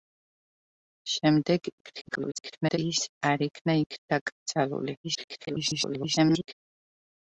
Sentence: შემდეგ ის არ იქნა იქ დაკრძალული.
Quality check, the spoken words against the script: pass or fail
fail